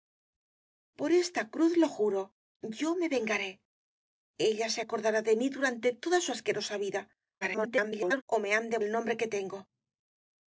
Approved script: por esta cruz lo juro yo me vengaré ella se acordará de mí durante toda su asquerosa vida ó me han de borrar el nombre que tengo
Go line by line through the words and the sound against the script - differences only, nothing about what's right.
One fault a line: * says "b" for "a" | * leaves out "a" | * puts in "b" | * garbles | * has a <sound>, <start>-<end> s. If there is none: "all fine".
* garbles
* leaves out "borrar"